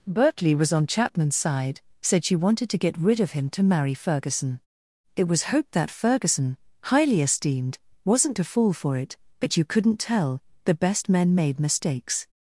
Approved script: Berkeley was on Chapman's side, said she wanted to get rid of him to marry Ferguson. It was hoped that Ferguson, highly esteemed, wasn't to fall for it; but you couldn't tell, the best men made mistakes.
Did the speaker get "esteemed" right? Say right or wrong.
right